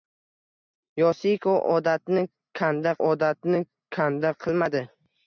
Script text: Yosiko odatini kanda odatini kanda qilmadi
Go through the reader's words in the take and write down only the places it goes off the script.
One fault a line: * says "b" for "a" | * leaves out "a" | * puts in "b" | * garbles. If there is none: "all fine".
all fine